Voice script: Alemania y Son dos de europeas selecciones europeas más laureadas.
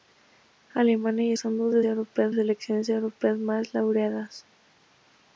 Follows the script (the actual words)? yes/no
yes